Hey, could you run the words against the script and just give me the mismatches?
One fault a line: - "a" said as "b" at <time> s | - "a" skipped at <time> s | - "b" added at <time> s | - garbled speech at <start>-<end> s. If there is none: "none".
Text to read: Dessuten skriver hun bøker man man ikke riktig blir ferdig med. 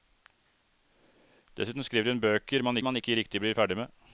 none